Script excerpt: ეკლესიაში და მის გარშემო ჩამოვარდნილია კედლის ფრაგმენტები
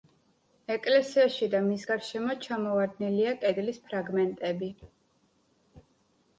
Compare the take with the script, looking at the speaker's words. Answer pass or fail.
pass